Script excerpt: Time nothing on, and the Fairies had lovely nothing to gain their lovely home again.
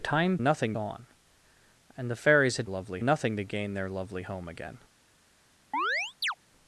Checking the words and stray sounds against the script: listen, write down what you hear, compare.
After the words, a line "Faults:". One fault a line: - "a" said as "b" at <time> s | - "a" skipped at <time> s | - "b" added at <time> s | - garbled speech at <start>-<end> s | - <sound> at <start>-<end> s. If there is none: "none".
Time nothing on, and the Fairies had lovely nothing to gain their lovely home again.
Faults:
- chirp at 5.7-6.3 s